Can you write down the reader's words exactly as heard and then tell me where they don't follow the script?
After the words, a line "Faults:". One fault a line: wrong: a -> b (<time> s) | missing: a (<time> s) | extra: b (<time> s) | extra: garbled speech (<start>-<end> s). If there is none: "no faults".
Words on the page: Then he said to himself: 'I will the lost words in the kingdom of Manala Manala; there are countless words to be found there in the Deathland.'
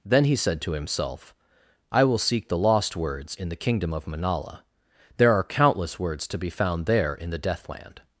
Then he said to himself: 'I will seek the lost words in the kingdom of Manala; there are countless words to be found there in the Deathland.'
Faults:
extra: seek (2.2 s)
missing: Manala (4.6 s)